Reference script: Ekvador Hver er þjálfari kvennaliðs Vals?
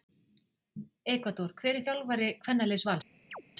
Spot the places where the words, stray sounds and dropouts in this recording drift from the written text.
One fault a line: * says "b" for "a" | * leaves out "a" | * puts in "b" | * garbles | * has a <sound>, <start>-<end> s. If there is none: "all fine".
* has a chirp, 3.3-3.4 s